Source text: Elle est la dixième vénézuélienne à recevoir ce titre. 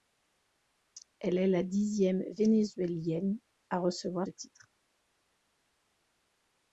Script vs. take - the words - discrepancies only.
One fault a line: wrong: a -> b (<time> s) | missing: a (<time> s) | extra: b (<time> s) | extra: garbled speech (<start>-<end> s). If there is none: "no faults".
missing: ce (4.3 s)